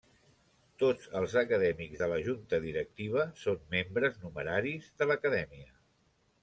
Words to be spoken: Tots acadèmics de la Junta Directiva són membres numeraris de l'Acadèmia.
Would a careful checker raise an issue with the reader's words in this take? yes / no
yes